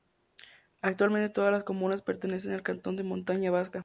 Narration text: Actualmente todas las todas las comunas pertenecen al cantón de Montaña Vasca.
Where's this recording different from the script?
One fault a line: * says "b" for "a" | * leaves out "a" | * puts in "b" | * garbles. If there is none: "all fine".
* leaves out "todas las"